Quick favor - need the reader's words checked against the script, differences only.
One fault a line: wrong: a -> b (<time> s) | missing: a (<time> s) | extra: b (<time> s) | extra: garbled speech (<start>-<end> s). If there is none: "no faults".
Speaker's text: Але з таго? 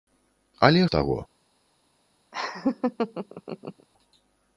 no faults